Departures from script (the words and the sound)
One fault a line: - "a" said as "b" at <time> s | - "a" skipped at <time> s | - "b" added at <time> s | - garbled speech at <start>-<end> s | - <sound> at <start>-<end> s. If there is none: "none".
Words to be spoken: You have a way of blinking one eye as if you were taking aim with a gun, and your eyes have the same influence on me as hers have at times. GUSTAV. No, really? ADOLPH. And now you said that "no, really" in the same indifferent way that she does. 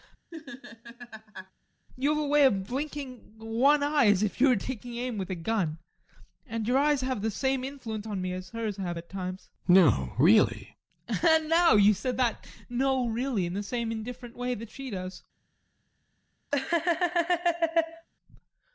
- laugh at 0.3-1.5 s
- laugh at 16.5-18.1 s